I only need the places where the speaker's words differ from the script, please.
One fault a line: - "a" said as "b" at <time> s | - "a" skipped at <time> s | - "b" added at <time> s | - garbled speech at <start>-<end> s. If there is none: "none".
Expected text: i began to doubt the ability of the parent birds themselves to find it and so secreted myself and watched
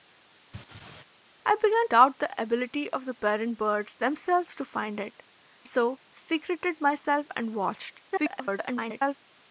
- "to" skipped at 1.9 s
- "and" skipped at 5.2 s
- garbled speech at 8.1-9.2 s